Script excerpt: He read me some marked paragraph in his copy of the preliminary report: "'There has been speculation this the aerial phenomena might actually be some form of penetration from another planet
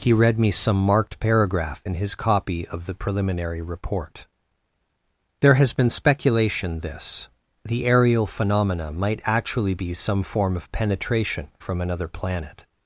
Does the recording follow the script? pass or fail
pass